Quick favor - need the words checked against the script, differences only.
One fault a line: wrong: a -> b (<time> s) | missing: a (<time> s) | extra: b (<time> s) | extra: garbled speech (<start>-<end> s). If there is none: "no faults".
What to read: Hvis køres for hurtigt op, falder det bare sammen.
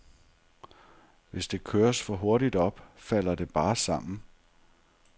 extra: det (1.5 s)